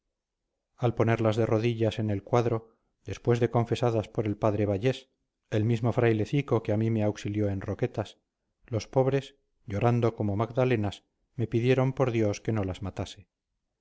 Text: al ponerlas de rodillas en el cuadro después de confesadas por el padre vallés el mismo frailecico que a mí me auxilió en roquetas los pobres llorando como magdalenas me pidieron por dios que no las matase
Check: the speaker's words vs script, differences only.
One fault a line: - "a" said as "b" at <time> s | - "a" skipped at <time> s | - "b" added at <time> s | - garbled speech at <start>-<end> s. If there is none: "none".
none